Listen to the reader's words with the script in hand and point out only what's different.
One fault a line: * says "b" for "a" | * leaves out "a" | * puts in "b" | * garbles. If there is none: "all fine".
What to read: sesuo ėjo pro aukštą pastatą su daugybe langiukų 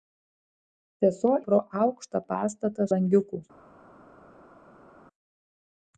* leaves out "ėjo"
* leaves out "su daugybe"